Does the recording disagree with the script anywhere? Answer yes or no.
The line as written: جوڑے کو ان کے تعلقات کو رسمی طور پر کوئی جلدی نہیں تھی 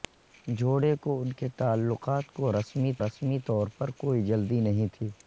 yes